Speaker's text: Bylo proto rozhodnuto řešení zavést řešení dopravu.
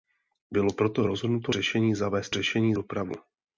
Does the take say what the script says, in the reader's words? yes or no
yes